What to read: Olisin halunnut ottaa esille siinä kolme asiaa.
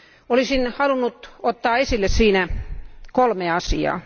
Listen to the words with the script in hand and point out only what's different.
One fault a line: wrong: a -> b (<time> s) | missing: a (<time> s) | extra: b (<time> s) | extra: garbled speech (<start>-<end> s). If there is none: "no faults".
no faults